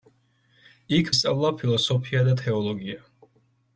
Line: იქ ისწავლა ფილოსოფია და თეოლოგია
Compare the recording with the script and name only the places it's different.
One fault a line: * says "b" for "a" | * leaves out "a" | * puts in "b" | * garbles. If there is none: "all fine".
all fine